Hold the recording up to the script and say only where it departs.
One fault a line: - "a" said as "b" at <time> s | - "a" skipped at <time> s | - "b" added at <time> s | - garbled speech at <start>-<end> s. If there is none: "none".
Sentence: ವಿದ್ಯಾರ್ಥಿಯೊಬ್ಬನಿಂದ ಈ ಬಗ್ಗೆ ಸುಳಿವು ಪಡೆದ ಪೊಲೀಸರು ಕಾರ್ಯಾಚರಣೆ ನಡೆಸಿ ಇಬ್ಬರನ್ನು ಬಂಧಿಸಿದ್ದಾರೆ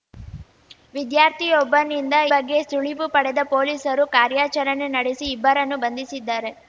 - "ಈ" skipped at 2.1 s